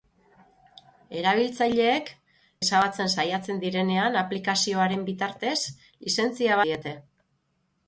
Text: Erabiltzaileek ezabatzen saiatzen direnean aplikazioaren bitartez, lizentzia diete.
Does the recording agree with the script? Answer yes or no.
yes